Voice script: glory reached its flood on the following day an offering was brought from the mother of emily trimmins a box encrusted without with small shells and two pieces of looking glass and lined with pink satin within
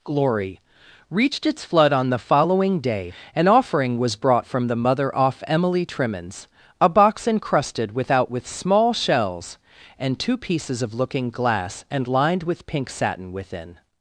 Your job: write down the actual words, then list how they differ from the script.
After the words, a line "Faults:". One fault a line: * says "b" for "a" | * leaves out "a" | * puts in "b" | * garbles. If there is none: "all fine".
glory reached its flood on the following day an offering was brought from the mother off emily trimmins a box encrusted without with small shells and two pieces of looking glass and lined with pink satin within
Faults:
* says "off" for "of"